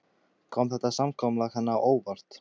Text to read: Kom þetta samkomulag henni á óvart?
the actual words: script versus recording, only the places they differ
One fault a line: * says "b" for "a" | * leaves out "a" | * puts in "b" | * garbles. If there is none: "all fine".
all fine